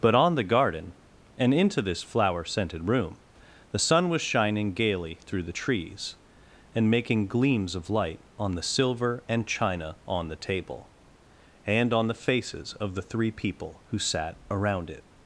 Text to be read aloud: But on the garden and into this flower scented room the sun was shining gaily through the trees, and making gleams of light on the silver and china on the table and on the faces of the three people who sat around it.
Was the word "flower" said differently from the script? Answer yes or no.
no